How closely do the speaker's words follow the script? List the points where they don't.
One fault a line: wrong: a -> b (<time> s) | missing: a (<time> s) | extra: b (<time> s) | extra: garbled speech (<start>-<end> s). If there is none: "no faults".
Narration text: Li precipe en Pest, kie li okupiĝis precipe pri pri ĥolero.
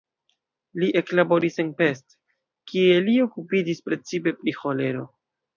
wrong: precipe -> eklaboris (1.0 s)
missing: pri (4.6 s)